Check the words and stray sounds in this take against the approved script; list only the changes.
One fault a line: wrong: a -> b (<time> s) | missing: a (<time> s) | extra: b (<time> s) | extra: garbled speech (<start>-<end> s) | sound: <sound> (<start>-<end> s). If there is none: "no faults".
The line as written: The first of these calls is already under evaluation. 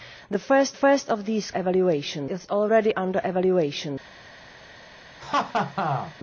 extra: first (0.7 s)
wrong: calls -> evaluation (1.5 s)
sound: laugh (5.2-6.1 s)